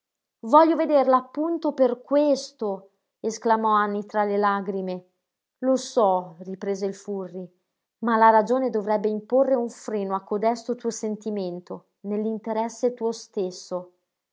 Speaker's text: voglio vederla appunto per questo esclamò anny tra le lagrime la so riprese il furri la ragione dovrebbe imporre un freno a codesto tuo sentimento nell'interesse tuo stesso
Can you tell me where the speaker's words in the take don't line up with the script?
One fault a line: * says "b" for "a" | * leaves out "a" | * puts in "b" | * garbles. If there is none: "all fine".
* says "lo" for "la"
* puts in "ma"